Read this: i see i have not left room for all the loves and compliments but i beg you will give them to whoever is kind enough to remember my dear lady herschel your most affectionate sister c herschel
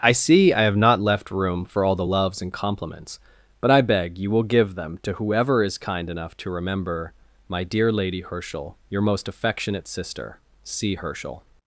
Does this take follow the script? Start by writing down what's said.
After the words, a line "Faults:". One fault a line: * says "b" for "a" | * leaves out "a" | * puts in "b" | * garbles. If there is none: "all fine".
i see i have not left room for all the loves and compliments but i beg you will give them to whoever is kind enough to remember my dear lady herschel your most affectionate sister c herschel
Faults:
all fine